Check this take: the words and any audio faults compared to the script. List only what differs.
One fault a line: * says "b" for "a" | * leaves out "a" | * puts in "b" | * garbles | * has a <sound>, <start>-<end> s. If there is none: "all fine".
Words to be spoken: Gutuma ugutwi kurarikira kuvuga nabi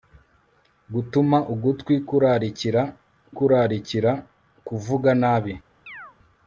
* puts in "kurarikira"
* has a chirp, 5.9-6.2 s